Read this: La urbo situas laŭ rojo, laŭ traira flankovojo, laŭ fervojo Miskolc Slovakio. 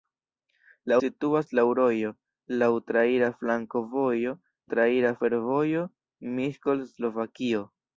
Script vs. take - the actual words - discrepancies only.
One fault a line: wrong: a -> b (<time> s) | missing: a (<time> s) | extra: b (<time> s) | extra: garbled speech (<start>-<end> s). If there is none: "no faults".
missing: urbo (0.9 s)
wrong: laŭ -> traira (4.7 s)